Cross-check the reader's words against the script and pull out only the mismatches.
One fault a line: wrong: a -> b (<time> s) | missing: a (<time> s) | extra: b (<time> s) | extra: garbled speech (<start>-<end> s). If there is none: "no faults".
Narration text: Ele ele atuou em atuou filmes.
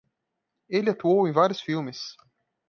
missing: ele (0.9 s)
wrong: atuou -> vários (1.3 s)